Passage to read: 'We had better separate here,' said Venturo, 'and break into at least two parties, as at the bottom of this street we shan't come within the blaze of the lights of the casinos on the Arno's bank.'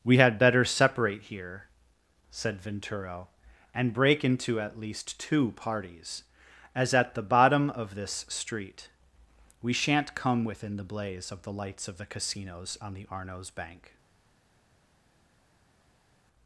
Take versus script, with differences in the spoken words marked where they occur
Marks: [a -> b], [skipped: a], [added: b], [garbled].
'We had better separate here,' said Venturo, 'and break into at least two parties, as at the bottom of this street we shan't come within the blaze of the lights of the casinos on the Arno's bank.'